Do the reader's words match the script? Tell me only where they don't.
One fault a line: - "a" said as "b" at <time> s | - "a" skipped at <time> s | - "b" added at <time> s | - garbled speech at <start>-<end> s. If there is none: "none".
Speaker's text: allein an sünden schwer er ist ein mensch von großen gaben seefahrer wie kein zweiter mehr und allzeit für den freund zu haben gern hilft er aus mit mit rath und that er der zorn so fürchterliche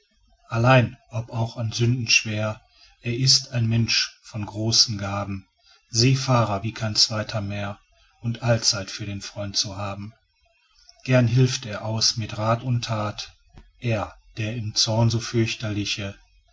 - "ob auch" added at 1.1 s
- "mit" skipped at 12.4 s
- "im" added at 14.5 s